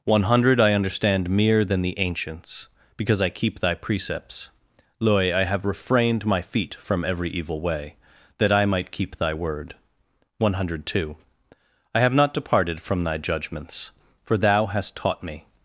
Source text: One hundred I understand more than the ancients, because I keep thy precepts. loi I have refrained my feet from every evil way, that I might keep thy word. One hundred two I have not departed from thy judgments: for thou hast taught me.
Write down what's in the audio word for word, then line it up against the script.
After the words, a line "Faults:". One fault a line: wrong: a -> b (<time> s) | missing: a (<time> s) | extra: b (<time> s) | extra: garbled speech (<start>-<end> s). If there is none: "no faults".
One hundred I understand mere than the ancients, because I keep thy precepts. loi I have refrained my feet from every evil way, that I might keep thy word. One hundred two I have not departed from thy judgments: for thou hast taught me.
Faults:
wrong: more -> mere (1.3 s)